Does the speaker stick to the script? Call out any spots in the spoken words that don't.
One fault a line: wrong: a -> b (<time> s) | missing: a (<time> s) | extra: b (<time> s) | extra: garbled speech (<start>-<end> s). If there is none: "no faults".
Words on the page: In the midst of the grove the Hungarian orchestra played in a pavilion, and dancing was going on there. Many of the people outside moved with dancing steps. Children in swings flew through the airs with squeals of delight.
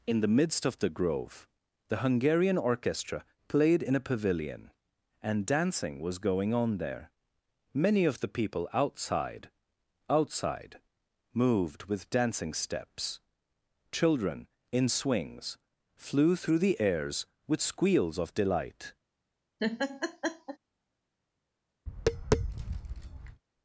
extra: outside (10.1 s)